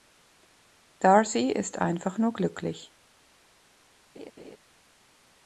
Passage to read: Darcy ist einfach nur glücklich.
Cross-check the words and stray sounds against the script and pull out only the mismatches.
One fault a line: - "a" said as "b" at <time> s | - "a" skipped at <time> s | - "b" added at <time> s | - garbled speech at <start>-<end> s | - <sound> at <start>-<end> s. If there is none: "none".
- laugh at 4.1-4.6 s